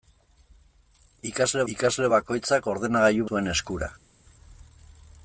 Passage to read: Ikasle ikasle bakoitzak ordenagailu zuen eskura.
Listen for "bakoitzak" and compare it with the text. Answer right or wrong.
right